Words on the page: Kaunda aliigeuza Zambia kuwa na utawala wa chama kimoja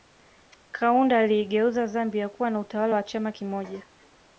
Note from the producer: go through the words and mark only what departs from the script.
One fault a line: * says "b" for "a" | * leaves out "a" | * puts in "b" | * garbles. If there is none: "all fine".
all fine